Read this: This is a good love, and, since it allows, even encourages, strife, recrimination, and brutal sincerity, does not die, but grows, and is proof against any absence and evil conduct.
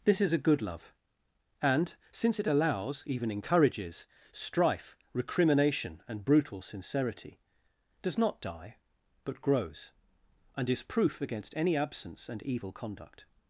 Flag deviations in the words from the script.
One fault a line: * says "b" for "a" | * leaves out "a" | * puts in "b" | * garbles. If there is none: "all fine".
all fine